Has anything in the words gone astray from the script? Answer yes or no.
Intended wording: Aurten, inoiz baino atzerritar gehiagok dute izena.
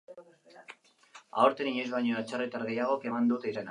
yes